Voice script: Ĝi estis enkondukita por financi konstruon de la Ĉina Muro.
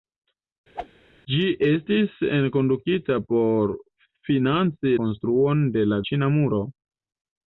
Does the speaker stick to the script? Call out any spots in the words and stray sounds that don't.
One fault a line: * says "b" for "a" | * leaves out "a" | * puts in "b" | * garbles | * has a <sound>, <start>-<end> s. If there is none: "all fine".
* has a whoosh, 0.7-0.9 s